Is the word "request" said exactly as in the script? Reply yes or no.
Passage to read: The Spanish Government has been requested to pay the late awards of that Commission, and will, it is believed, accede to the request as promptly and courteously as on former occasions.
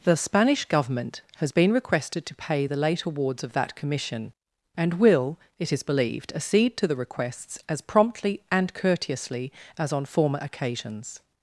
no